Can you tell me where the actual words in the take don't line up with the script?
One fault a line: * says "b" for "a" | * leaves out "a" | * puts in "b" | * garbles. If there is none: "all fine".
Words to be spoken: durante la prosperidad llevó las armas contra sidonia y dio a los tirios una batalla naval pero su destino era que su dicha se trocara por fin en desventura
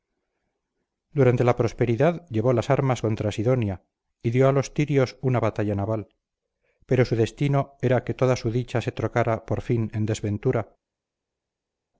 * puts in "toda"